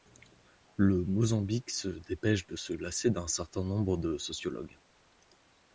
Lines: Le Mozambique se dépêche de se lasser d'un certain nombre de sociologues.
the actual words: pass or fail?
pass